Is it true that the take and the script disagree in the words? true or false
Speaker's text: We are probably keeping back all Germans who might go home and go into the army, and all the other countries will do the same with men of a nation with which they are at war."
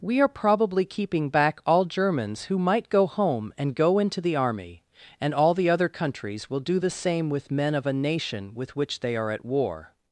false